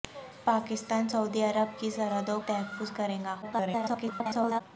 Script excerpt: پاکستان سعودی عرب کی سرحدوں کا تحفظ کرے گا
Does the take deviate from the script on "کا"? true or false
true